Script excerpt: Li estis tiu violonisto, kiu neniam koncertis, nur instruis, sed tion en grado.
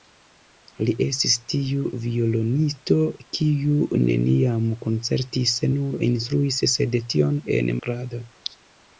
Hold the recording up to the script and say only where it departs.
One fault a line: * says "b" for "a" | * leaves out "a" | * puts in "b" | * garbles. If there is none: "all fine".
all fine